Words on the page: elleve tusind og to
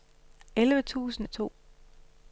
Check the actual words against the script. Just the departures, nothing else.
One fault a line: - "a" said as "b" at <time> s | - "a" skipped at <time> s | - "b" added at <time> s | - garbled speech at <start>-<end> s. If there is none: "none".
none